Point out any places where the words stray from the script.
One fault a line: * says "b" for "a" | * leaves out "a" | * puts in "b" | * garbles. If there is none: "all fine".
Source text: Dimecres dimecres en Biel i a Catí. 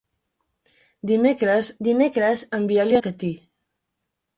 all fine